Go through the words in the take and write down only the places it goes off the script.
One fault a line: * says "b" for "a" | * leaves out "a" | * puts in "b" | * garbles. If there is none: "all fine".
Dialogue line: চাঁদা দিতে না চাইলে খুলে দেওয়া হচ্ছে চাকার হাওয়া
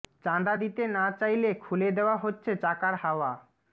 all fine